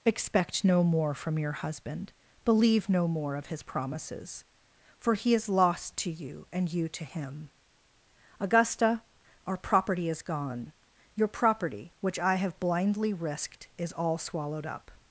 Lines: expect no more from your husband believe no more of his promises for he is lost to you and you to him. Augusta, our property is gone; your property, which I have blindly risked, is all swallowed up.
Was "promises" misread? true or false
false